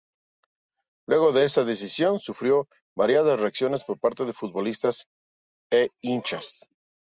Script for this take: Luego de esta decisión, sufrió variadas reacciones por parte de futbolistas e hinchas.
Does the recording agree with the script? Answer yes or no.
yes